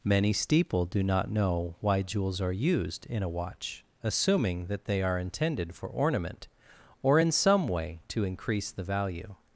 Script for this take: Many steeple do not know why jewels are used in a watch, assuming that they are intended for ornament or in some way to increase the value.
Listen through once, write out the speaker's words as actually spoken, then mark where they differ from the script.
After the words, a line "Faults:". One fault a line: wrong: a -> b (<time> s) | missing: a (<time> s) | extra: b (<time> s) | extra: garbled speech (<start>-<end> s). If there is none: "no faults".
Many steeple do not know why jewels are used in a watch, assuming that they are intended for ornament or in some way to increase the value.
Faults:
no faults